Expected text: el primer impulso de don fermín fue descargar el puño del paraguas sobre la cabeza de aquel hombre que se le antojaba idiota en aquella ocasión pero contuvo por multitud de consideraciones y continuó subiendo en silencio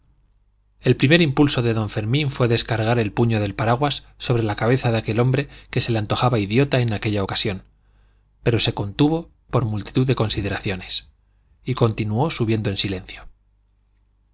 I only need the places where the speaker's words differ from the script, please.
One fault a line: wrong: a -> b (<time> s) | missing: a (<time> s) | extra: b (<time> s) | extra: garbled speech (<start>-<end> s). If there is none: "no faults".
extra: se (8.6 s)